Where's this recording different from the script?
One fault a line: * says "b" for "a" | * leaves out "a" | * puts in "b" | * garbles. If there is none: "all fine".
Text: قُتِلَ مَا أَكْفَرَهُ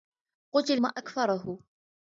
all fine